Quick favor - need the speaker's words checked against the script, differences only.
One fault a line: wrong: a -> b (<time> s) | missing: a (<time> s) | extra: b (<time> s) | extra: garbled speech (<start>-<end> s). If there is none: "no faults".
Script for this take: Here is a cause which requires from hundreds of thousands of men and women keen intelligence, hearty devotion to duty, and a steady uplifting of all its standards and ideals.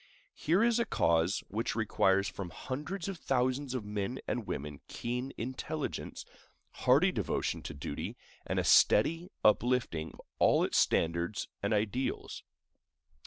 no faults